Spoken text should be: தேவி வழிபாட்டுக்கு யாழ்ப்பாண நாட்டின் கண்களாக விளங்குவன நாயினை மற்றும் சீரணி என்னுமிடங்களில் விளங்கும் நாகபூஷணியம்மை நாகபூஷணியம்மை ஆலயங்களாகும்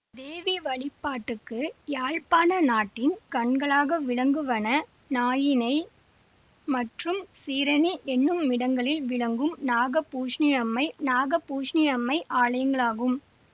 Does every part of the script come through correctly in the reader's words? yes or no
yes